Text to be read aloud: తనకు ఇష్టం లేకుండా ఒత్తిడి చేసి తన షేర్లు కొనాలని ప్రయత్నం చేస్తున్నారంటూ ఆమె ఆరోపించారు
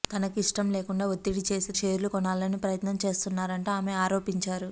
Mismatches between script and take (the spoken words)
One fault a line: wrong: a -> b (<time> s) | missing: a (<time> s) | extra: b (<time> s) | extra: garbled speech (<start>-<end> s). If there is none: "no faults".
missing: తన (1.7 s)